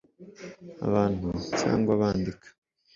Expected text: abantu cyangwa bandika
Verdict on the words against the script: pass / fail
pass